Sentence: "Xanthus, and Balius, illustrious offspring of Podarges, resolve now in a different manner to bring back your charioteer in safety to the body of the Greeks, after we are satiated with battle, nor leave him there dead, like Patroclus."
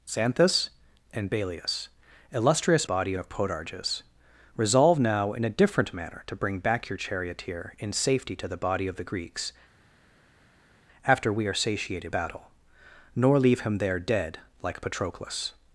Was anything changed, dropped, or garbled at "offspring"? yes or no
yes